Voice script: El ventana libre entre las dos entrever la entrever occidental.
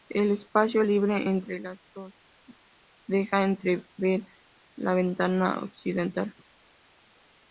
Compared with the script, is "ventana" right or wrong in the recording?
wrong